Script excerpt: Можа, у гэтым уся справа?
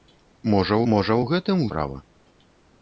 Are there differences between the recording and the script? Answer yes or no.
yes